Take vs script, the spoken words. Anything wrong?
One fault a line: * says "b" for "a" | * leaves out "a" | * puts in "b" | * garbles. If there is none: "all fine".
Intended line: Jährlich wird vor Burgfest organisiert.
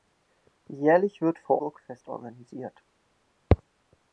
all fine